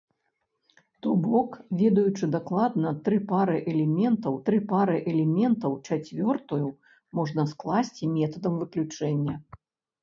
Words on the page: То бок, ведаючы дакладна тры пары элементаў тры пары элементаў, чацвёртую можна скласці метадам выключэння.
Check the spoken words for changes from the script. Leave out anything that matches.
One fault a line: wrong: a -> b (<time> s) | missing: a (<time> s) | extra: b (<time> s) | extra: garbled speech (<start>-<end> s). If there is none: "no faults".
no faults